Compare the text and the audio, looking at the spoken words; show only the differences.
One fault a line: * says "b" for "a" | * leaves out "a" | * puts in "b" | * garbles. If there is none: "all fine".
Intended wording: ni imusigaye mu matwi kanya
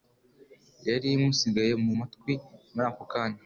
* says "yari" for "ni"
* puts in "muri ako"